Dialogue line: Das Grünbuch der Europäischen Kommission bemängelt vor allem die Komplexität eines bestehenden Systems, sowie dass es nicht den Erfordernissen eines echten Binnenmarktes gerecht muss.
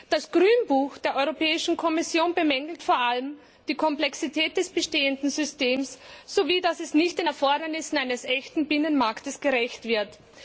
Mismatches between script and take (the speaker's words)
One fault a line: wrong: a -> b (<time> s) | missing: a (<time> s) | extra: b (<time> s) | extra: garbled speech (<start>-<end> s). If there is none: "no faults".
wrong: eines -> des (4.6 s)
wrong: muss -> wird (9.8 s)